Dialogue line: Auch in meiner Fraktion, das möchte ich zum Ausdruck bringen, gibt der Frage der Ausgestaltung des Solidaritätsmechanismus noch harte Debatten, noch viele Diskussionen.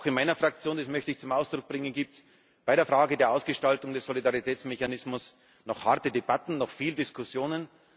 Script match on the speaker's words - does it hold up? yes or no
no